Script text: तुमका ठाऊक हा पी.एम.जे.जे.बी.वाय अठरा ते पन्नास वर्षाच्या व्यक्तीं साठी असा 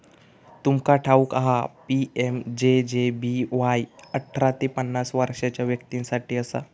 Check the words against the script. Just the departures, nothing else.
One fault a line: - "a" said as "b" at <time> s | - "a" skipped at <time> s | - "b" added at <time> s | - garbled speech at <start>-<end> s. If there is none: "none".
none